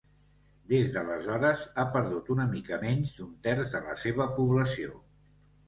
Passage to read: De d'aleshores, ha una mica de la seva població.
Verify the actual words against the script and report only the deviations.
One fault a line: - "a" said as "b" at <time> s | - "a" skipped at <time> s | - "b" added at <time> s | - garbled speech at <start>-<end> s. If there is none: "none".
- "De" said as "Des" at 0.7 s
- "perdut" added at 2.0 s
- "menys d'un terç" added at 2.8 s